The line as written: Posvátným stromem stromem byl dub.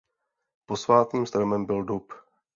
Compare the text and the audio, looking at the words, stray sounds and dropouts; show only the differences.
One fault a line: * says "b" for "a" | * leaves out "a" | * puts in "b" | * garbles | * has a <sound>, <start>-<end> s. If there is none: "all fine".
* leaves out "stromem"